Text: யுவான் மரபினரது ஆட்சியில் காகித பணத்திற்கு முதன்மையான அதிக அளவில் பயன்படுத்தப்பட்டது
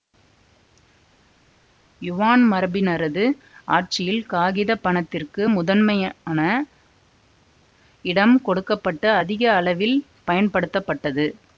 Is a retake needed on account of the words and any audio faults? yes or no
yes